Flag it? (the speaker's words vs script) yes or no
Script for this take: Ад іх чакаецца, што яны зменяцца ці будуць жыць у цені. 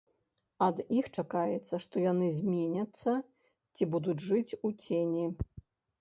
no